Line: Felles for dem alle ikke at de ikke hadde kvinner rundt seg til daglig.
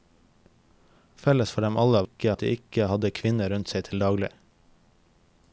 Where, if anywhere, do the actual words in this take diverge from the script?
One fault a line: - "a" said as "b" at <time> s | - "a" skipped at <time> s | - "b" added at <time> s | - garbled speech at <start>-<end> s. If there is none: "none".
none